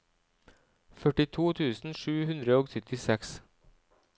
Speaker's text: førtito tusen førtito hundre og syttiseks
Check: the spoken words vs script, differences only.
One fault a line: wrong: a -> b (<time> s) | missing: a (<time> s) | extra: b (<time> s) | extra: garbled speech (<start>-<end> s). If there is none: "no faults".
wrong: førtito -> sju (2.0 s)